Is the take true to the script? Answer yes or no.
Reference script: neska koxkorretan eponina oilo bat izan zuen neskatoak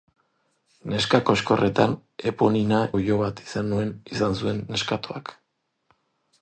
yes